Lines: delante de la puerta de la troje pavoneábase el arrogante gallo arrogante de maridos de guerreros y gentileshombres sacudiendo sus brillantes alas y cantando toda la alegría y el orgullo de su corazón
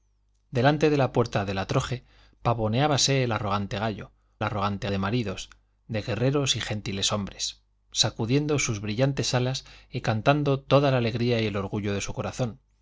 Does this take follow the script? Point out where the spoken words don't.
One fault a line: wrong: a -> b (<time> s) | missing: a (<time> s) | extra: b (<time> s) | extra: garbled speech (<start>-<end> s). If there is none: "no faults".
no faults